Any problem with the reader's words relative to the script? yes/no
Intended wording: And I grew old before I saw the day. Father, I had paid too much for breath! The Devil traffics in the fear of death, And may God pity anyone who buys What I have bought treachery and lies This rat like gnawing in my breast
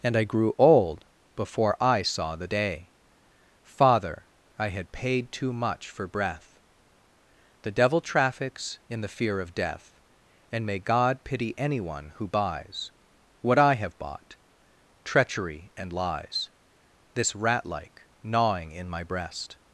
no